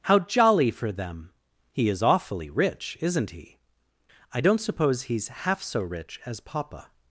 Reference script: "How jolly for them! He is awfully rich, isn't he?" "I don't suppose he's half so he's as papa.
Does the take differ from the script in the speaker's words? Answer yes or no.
yes